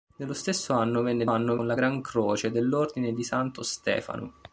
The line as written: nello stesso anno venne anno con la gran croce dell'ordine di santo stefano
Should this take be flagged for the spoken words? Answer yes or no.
no